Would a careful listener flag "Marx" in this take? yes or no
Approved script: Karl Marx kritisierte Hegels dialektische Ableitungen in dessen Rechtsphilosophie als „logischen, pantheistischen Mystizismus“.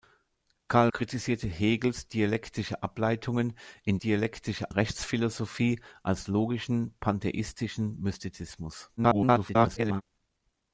yes